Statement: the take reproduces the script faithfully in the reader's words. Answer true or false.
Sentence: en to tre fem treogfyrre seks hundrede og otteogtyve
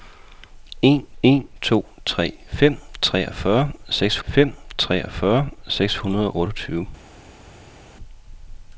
false